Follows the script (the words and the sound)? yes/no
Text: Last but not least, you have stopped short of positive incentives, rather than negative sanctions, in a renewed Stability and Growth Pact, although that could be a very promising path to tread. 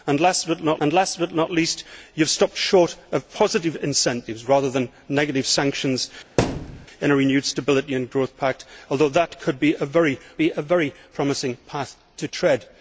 no